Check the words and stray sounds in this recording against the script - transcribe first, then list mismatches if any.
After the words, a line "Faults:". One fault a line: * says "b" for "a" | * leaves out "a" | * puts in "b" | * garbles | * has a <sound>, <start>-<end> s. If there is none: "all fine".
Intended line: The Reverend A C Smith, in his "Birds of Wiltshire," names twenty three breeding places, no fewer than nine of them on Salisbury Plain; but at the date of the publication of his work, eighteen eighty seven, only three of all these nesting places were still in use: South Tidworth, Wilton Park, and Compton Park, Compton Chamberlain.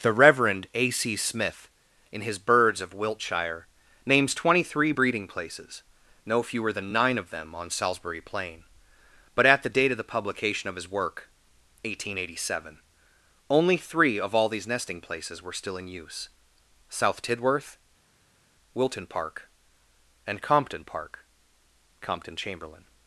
The Reverend A C Smith, in his "Birds of Wiltshire," names twenty three breeding places, no fewer than nine of them on Salisbury Plain; but at the date of the publication of his work, eighteen eighty seven, only three of all these nesting places were still in use: South Tidworth, Wilton Park, and Compton Park, Compton Chamberlain.
Faults:
all fine